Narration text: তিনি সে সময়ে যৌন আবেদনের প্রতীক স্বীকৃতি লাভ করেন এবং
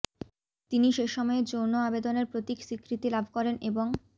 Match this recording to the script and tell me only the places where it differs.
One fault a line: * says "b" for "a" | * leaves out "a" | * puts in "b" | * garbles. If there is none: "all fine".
all fine